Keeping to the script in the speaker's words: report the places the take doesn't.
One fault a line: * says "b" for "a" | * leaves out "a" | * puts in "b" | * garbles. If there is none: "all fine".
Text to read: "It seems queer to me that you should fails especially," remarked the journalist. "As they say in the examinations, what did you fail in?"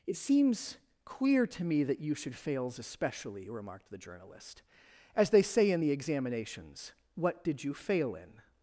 all fine